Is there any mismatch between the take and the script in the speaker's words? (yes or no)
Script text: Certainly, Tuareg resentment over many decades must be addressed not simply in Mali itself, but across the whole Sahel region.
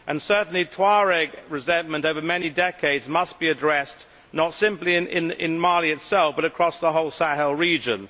no